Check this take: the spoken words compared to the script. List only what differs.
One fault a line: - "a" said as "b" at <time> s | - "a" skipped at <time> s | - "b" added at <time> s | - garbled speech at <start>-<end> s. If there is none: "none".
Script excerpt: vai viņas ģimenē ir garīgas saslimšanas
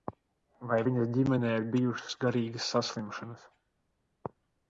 - "bijušas" added at 1.7 s